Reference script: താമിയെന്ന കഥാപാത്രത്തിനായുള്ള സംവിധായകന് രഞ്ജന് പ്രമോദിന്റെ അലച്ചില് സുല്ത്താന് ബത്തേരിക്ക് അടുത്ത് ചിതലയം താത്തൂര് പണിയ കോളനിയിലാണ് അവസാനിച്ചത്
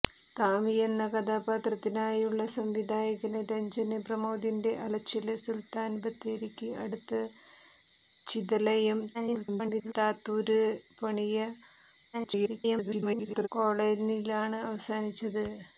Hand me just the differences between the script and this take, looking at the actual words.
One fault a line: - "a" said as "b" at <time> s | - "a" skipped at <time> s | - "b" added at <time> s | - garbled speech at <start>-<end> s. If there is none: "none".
- garbled speech at 9.1-9.9 s
- garbled speech at 12.1-13.5 s